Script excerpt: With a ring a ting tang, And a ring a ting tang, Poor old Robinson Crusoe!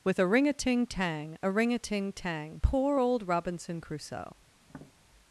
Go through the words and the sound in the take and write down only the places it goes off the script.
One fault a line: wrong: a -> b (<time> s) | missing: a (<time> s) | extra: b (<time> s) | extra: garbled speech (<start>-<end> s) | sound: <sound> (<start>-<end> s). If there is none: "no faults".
missing: And (1.4 s)
sound: tap (4.6-4.9 s)